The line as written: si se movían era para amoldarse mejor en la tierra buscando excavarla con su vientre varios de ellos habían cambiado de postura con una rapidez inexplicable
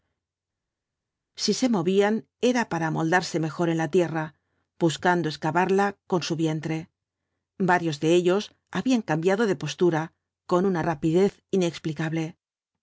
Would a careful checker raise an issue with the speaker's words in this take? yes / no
no